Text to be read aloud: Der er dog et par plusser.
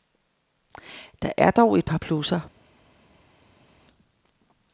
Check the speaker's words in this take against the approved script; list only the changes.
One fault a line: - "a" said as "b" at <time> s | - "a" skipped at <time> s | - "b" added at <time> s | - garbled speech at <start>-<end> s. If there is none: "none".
none